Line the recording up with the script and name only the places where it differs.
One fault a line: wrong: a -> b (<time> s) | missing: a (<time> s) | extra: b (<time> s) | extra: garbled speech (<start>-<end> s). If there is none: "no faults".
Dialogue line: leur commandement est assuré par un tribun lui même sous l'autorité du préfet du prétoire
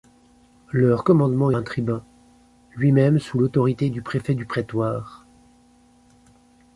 missing: est assuré par (1.5 s)